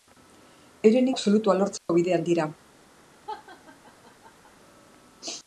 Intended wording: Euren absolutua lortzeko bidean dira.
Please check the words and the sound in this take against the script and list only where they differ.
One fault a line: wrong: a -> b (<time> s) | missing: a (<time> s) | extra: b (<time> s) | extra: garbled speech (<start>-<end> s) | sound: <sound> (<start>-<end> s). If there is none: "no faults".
sound: dropout (1.8-1.9 s)
sound: laugh (3.3-4.5 s)